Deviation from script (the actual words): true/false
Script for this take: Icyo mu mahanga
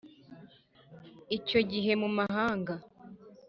true